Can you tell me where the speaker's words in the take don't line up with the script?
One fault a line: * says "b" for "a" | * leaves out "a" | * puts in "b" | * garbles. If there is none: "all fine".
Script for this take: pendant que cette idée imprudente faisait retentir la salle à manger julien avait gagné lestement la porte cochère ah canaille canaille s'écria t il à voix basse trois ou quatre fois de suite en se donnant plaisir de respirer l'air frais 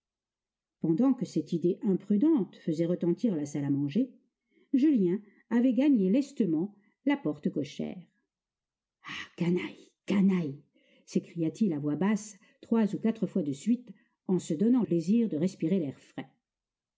all fine